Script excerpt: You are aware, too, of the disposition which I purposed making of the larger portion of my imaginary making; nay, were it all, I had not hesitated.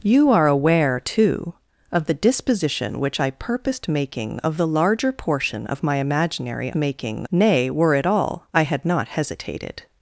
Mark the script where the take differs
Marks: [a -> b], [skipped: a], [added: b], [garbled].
You are aware, too, of the disposition which I purposed making of the larger portion of my imaginary making; nay, were it all, I had not hesitated.